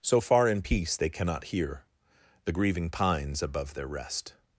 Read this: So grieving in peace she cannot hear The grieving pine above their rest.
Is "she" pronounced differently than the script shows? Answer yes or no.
yes